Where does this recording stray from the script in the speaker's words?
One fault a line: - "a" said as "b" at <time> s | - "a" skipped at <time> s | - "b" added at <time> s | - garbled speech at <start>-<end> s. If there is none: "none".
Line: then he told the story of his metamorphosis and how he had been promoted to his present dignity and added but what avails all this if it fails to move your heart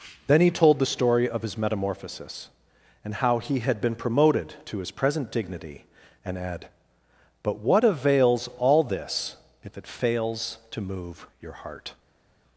- "added" said as "add" at 6.4 s